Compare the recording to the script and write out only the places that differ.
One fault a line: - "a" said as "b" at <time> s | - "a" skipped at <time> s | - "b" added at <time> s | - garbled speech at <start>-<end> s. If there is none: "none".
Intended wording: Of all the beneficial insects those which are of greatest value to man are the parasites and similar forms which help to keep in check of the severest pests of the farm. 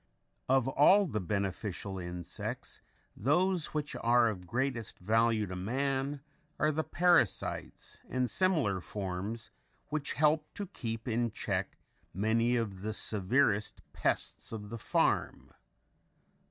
- "many" added at 12.1 s